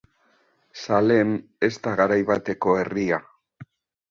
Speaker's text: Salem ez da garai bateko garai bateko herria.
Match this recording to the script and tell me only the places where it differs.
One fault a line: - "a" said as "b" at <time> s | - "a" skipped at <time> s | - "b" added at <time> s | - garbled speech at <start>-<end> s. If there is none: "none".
- "garai bateko" skipped at 2.8 s